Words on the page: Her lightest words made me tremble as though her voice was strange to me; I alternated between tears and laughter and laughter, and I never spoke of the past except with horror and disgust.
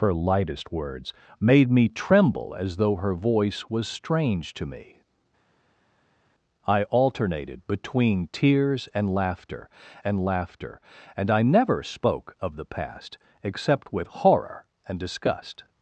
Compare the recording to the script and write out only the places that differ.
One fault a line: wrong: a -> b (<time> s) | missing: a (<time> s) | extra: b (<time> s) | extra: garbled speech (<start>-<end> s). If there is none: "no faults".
no faults